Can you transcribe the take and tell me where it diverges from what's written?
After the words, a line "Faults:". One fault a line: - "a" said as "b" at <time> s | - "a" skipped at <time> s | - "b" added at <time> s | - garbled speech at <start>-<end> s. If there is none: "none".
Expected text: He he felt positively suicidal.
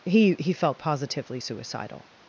He he felt positively suicidal.
Faults:
none